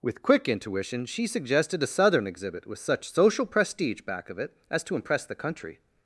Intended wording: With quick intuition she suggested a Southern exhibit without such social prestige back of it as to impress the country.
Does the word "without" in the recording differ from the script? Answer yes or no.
yes